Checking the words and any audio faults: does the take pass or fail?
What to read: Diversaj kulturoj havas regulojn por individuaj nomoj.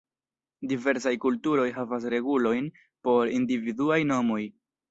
pass